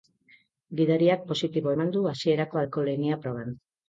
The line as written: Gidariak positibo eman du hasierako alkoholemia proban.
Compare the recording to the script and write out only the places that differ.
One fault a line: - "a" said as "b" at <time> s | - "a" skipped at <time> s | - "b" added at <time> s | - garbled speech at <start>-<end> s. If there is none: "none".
none